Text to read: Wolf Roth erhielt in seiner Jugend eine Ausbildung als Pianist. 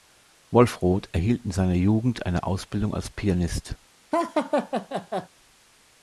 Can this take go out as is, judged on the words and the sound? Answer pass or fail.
fail